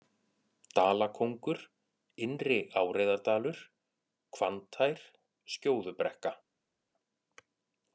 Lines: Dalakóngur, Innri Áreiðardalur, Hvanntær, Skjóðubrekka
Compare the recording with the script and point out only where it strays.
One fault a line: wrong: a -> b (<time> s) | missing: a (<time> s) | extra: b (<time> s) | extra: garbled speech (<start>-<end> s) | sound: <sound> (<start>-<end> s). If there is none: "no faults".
no faults